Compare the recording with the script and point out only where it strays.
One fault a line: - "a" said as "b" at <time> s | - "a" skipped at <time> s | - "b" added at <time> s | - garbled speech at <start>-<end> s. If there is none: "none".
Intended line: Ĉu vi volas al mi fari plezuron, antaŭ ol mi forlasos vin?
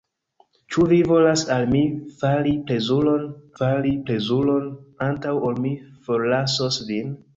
- "fari plezuron" added at 3.6 s